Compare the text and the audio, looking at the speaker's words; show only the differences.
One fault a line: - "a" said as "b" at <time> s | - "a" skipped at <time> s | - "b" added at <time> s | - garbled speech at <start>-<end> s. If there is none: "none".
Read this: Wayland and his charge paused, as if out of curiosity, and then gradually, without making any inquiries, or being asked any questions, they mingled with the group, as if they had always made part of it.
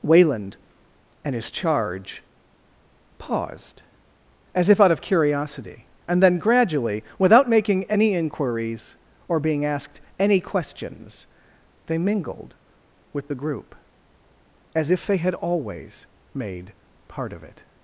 none